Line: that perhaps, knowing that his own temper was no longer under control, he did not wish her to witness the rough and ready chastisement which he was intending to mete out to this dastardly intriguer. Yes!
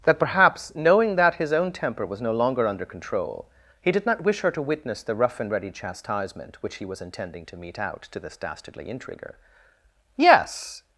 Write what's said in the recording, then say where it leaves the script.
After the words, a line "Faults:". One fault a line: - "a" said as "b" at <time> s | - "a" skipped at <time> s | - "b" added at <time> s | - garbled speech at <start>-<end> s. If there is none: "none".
that perhaps, knowing that his own temper was no longer under control, he did not wish her to witness the rough and ready chastisement which he was intending to mete out to this dastardly intriguer. Yes!
Faults:
none